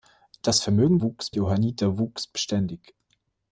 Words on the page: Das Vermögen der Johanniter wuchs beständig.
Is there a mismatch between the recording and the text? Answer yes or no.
yes